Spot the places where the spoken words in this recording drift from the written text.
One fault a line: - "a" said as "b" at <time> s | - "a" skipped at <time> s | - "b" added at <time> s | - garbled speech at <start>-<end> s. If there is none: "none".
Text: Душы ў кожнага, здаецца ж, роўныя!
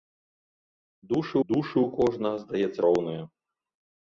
- "душы" added at 1.5 s
- "ж" skipped at 2.8 s